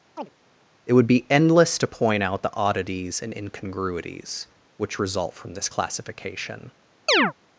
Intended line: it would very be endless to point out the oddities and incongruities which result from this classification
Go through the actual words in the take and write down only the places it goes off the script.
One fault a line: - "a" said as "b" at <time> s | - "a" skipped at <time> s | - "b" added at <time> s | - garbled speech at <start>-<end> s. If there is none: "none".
- "very" skipped at 1.1 s